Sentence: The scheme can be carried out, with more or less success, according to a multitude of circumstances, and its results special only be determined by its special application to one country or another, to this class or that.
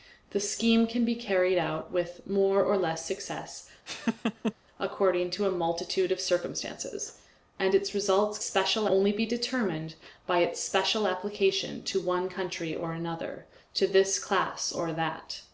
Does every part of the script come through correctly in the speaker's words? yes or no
yes